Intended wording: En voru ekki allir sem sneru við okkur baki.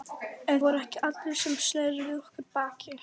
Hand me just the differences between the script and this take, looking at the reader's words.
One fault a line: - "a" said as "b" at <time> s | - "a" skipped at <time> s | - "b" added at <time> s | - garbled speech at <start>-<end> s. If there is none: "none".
none